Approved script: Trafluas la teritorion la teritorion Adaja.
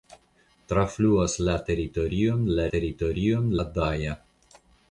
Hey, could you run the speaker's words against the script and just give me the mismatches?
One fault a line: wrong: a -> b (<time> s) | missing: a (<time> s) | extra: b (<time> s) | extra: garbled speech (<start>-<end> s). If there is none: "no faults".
no faults